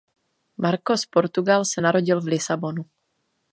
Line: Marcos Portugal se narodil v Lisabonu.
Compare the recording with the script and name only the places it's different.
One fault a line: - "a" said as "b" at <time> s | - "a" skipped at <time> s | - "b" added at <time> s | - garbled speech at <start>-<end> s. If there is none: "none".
none